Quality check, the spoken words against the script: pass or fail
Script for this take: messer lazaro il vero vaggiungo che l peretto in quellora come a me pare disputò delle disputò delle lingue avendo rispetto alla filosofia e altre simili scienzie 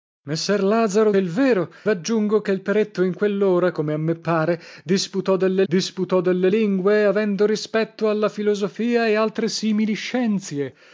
pass